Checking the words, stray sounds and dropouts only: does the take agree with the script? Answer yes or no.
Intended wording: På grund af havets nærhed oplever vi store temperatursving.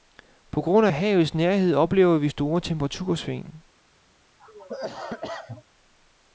no